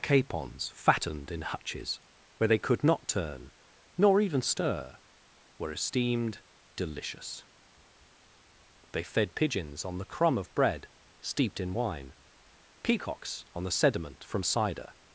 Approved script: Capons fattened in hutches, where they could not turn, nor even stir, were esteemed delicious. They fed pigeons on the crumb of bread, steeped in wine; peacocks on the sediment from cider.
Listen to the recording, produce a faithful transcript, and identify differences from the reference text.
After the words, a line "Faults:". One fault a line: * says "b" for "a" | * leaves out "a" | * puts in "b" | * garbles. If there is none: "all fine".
Capons fattened in hutches, where they could not turn, nor even stir, were esteemed delicious. They fed pigeons on the crumb of bread, steeped in wine; peacocks on the sediment from cider.
Faults:
all fine